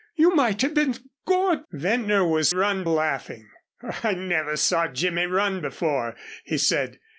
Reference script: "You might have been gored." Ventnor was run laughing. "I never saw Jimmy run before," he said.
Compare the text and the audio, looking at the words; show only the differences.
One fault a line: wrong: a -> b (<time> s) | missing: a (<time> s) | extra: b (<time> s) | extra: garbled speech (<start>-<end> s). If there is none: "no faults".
no faults